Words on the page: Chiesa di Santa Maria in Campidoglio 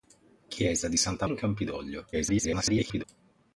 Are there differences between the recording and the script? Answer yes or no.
yes